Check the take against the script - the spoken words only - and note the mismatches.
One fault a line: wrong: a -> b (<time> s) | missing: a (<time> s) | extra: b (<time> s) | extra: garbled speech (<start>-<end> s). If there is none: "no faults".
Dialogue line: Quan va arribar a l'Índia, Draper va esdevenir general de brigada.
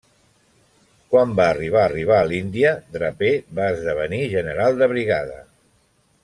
extra: arribar (1.9 s)